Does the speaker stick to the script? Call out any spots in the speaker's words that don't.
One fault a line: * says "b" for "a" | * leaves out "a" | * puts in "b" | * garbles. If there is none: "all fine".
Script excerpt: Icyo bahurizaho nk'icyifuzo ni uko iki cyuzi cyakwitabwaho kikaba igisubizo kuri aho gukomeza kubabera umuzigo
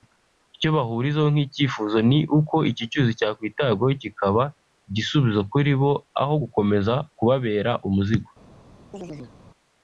* puts in "bo"